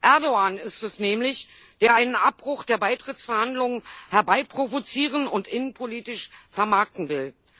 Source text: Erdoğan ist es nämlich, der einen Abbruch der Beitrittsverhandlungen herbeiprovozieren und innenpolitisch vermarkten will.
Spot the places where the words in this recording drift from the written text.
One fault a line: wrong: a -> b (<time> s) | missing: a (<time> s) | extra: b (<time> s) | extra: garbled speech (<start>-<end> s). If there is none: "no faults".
no faults